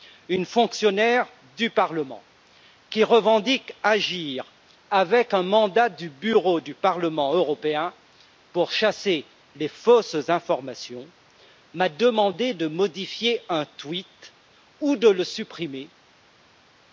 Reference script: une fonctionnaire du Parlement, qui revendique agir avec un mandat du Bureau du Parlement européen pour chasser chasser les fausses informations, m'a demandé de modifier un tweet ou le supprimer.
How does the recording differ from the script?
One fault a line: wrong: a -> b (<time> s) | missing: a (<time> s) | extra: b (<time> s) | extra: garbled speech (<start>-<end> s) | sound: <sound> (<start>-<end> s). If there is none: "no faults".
missing: chasser (9.3 s)
extra: de (15.0 s)